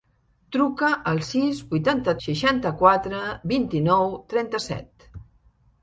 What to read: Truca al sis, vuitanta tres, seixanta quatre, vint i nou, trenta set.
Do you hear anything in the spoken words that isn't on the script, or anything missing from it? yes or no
yes